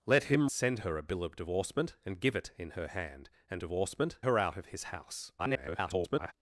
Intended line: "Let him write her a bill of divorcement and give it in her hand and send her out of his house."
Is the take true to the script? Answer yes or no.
no